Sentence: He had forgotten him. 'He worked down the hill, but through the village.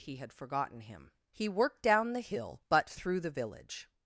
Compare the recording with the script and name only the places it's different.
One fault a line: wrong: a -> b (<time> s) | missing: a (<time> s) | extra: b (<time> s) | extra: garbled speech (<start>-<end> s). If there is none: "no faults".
no faults